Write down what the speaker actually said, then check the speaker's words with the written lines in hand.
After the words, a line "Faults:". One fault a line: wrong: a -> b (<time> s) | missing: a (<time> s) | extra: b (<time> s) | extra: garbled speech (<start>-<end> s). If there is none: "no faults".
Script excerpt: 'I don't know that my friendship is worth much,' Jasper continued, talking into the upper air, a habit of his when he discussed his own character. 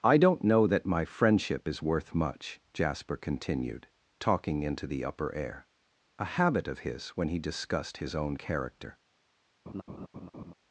'I don't know that my friendship is worth much,' Jasper continued, talking into the upper air, a habit of his when he discussed his own character.
Faults:
no faults